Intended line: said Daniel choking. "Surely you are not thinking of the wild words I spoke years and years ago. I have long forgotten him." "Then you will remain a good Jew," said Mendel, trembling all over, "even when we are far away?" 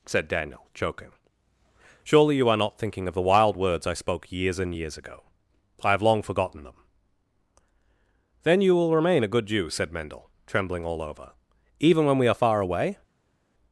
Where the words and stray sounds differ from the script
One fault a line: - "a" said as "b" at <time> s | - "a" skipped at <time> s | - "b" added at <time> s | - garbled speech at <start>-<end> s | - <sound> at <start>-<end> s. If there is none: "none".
- "him" said as "them" at 6.6 s